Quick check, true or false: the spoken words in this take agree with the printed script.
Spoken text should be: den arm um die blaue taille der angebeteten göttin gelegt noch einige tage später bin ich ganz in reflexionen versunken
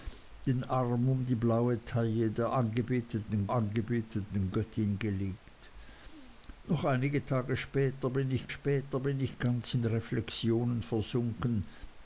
false